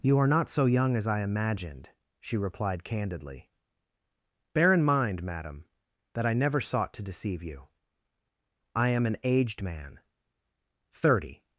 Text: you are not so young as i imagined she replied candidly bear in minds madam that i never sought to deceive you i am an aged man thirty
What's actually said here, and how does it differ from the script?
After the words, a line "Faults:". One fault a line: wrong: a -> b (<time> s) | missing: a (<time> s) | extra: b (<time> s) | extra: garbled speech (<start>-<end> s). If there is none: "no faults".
you are not so young as i imagined she replied candidly bear in mind madam that i never sought to deceive you i am an aged man thirty
Faults:
wrong: minds -> mind (4.8 s)